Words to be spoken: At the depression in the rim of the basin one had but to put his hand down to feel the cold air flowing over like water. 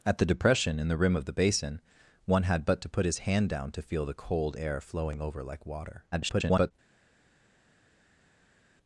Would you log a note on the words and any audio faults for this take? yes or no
yes